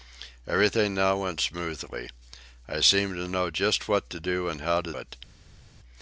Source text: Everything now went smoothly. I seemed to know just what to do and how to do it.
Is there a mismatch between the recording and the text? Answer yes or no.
yes